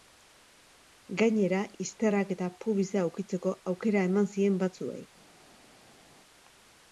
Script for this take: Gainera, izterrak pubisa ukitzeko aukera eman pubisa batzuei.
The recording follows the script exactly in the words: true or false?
false